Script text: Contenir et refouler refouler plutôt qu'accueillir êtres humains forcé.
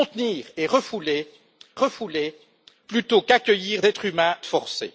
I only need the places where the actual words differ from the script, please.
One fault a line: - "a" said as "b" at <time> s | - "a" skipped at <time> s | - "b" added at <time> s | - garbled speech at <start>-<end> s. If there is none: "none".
none